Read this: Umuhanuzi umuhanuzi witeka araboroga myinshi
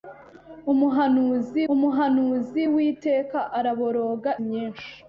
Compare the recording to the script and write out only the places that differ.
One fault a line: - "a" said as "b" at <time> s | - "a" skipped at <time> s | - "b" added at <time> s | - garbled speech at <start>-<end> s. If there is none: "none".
none